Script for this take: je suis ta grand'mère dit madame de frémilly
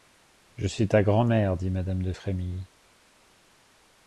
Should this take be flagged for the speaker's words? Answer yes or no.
no